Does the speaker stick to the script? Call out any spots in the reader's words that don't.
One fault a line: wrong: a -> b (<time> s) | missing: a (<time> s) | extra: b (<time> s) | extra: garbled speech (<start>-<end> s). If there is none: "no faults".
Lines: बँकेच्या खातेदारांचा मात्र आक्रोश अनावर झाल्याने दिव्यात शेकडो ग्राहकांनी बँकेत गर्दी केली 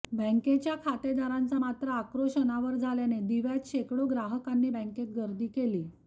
no faults